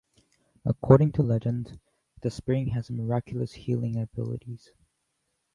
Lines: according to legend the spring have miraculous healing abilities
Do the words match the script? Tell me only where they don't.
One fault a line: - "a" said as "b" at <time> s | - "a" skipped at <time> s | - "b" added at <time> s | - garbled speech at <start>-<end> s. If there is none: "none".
- "have" said as "has" at 2.7 s